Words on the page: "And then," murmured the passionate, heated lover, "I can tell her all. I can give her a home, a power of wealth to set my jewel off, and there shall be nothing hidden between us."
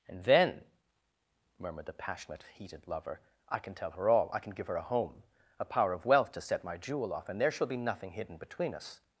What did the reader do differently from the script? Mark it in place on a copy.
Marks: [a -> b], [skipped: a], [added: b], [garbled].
"And then," murmured the passionate, heated lover, "I can tell her all. I can give her a home, a power of wealth to set my jewel off, and there shall be nothing hidden between us."